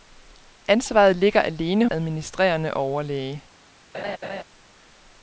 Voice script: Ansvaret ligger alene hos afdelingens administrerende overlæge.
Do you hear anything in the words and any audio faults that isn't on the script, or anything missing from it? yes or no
yes